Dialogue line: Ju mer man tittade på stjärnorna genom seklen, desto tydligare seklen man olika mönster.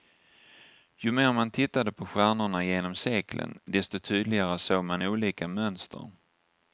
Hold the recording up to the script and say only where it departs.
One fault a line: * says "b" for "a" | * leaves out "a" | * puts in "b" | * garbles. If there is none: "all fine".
* says "såg" for "seklen"